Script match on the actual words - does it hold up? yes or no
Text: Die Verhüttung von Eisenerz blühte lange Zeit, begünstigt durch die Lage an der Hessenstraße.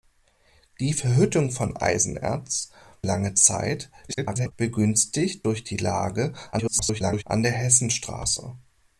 no